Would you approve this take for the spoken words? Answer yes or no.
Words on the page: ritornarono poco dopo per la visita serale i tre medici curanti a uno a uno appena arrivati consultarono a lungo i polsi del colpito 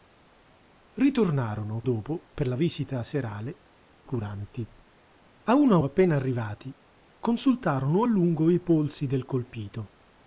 no